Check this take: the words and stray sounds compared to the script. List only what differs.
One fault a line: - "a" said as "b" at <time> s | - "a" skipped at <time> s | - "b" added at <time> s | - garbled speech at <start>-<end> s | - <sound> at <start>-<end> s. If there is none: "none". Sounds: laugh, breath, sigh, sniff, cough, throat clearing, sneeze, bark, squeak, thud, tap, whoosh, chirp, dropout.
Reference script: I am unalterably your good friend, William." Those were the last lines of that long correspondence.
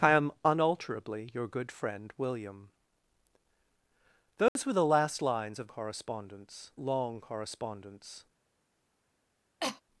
- dropout at 4.5-4.6 s
- "that" said as "correspondence" at 5.7 s
- cough at 9.6-9.8 s